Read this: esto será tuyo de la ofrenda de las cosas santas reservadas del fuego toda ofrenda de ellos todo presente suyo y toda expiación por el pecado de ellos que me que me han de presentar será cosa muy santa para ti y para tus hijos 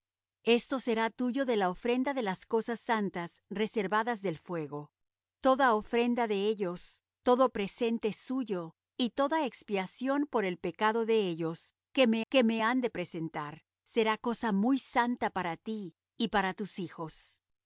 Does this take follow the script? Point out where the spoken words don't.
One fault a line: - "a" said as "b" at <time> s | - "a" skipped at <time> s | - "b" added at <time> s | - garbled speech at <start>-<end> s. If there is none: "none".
none